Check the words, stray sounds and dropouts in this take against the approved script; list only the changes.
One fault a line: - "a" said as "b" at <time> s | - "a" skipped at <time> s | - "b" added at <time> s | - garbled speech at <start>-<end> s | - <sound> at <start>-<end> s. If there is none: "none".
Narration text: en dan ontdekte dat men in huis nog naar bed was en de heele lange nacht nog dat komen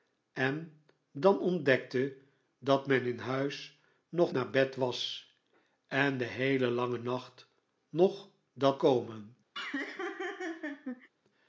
- laugh at 9.5-11.1 s